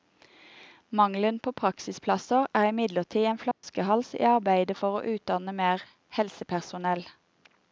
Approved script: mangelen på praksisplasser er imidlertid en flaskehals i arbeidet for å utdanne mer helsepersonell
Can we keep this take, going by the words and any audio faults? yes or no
no